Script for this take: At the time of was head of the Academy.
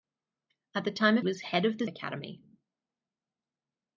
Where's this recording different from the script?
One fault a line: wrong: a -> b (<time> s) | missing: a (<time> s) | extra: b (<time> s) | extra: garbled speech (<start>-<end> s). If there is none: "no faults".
no faults